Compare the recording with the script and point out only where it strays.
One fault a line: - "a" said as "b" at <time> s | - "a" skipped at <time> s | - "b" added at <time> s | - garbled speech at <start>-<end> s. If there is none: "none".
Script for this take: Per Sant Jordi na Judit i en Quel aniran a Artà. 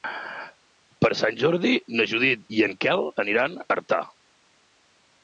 none